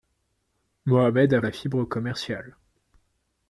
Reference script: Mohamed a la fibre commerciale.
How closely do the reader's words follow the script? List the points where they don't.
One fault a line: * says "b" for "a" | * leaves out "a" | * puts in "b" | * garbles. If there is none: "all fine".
all fine